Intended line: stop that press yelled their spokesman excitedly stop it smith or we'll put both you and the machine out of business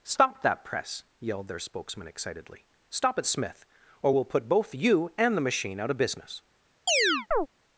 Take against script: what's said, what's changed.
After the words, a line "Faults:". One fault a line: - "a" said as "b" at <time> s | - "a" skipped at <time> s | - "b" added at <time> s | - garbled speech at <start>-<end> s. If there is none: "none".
stop that press yelled their spokesman excitedly stop it smith or we'll put both you and the machine out of business
Faults:
none